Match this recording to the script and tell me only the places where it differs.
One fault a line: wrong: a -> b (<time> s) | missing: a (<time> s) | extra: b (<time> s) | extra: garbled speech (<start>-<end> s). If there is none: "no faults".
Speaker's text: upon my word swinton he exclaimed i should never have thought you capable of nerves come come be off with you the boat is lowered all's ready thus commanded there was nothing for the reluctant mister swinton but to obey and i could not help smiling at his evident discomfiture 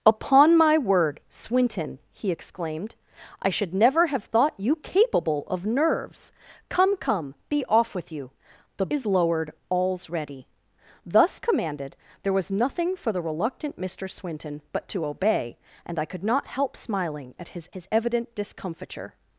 missing: boat (8.9 s)
extra: his (17.7 s)